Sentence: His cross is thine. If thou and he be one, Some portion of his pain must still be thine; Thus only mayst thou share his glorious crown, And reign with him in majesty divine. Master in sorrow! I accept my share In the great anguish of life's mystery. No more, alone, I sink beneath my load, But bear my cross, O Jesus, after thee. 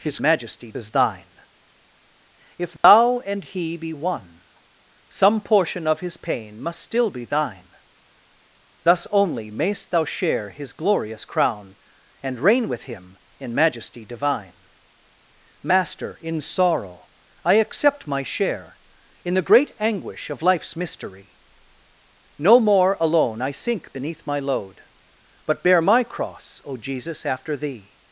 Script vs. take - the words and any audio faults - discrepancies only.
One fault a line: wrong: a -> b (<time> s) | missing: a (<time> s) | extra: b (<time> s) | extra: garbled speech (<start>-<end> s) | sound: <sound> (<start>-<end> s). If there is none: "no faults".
wrong: cross -> majesty (0.2 s)
sound: dropout (2.8-2.8 s)